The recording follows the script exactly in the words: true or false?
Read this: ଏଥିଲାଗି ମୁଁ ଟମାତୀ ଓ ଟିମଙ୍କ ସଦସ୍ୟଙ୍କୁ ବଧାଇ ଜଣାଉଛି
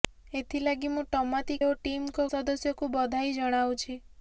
true